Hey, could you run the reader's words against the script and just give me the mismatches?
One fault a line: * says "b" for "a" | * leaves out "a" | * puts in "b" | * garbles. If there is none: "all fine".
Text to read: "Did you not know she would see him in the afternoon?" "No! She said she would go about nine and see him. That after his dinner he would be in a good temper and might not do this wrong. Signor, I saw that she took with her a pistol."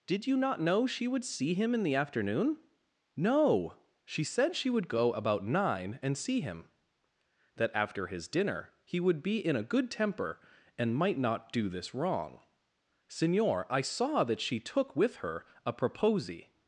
* says "proposi" for "pistol"